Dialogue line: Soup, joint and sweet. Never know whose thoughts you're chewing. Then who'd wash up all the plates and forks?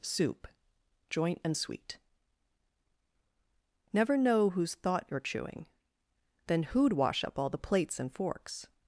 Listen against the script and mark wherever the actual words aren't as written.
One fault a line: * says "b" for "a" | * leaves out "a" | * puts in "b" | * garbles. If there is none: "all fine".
* says "thought" for "thoughts"